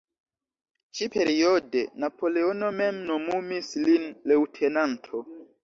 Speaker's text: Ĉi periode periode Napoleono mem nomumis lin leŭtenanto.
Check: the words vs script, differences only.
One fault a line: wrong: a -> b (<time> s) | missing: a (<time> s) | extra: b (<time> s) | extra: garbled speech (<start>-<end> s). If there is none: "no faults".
missing: periode (1.8 s)